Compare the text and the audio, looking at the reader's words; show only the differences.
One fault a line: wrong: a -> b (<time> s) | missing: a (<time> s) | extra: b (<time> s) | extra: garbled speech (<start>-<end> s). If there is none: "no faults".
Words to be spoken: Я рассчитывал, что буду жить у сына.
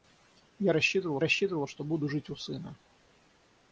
extra: рассчитывал (1.2 s)